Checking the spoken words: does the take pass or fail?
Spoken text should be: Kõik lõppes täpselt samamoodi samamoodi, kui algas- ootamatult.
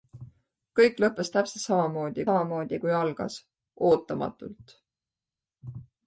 pass